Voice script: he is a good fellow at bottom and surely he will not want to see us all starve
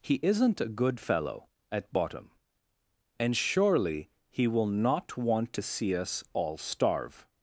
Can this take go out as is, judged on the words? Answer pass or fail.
fail